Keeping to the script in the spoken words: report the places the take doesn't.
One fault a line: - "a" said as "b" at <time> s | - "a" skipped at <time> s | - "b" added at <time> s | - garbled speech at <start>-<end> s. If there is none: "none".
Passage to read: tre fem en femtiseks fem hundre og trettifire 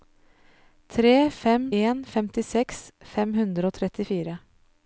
none